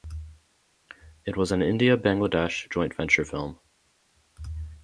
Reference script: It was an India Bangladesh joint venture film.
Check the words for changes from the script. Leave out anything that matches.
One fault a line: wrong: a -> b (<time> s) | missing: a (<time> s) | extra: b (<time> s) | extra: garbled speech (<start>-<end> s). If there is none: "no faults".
no faults